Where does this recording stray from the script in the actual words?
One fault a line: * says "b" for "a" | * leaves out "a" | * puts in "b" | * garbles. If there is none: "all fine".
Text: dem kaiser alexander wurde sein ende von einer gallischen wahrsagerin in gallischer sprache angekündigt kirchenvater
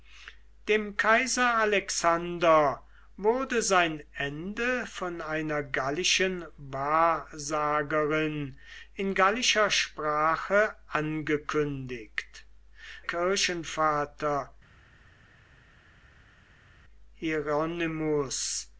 all fine